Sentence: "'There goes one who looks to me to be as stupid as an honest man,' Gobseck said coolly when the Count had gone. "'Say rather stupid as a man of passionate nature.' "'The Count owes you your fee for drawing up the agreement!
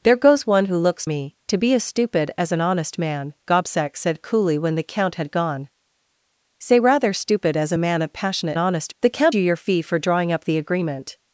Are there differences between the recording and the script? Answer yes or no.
yes